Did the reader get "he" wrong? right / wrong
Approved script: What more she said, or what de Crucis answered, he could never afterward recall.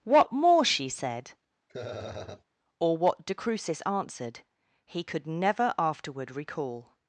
right